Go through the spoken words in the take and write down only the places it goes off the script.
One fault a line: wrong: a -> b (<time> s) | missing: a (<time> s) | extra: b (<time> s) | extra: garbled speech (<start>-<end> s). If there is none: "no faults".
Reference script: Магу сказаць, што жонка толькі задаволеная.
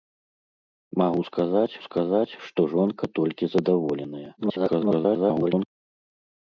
extra: сказаць (1.9 s)
extra: garbled speech (4.4-5.7 s)